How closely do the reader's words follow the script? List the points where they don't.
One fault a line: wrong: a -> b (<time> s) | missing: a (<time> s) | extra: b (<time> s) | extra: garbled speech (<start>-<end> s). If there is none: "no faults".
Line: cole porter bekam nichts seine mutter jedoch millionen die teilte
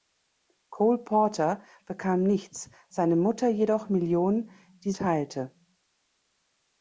no faults